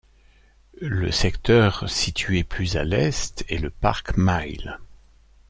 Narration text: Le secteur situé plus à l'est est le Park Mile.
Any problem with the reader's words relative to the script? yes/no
no